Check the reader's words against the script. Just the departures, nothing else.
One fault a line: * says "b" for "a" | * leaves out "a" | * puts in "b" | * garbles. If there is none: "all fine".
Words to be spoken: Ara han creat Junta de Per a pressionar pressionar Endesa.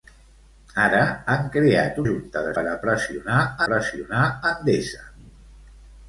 all fine